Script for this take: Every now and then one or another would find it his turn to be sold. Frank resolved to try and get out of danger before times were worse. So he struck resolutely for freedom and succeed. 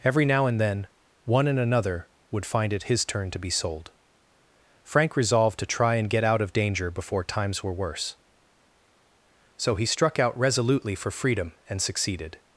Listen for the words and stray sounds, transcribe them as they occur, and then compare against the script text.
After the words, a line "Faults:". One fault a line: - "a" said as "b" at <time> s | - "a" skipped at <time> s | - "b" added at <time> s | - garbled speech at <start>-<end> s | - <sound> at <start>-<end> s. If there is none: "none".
Every now and then one and another would find it his turn to be sold. Frank resolved to try and get out of danger before times were worse. So he struck out resolutely for freedom and succeeded.
Faults:
- "or" said as "and" at 1.5 s
- "out" added at 10.2 s
- "succeed" said as "succeeded" at 11.8 s